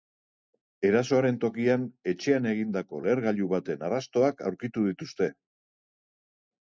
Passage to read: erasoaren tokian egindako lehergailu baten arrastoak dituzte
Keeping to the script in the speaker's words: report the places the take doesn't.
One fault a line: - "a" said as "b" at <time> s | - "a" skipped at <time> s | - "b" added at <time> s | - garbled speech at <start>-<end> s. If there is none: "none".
- "etxean" added at 2.1 s
- "aurkitu" added at 4.5 s